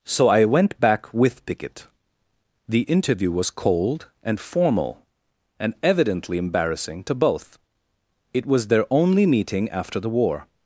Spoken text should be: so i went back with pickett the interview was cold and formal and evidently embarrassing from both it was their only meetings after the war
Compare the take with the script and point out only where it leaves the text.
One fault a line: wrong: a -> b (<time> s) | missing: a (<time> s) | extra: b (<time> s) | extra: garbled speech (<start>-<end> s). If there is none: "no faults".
wrong: from -> to (7.0 s)
wrong: meetings -> meeting (9.2 s)